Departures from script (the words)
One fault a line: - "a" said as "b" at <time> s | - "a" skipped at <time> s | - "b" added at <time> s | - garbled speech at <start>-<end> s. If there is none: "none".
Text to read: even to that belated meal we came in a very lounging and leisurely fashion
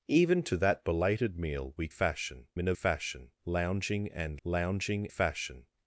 - "came" said as "fashion" at 1.9 s
- "very" said as "fashion" at 2.7 s
- "leisurely" said as "lounging" at 4.4 s